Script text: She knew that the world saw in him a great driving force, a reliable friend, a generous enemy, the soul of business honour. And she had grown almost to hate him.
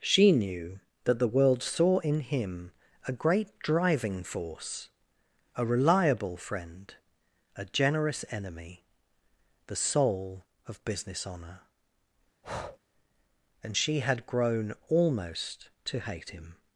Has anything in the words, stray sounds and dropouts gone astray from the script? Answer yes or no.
yes